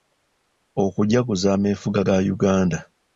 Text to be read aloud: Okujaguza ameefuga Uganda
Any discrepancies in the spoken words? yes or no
yes